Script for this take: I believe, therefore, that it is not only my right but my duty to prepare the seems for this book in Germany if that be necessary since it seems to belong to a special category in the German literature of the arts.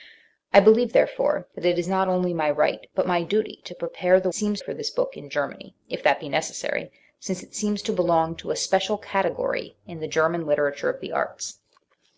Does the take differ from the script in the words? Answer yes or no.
no